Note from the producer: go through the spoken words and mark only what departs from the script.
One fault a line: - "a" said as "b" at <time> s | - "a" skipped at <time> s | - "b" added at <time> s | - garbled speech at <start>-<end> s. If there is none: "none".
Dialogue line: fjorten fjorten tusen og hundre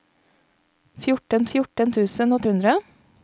none